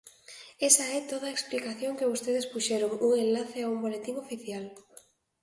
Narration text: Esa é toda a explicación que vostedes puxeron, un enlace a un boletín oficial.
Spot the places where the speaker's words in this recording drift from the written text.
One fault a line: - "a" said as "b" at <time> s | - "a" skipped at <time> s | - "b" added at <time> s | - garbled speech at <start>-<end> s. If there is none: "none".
none